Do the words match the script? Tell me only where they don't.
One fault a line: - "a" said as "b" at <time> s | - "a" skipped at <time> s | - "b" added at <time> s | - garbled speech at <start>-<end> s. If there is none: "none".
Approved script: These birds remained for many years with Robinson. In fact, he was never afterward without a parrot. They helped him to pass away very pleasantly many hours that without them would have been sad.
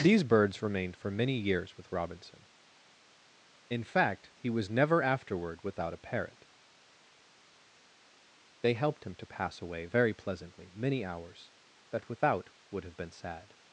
- "them" skipped at 12.5 s